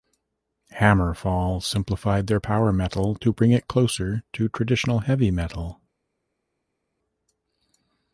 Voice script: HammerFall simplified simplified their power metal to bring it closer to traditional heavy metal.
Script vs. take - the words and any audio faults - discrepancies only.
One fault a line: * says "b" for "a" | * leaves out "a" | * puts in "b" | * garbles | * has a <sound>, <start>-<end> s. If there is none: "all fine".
* leaves out "simplified"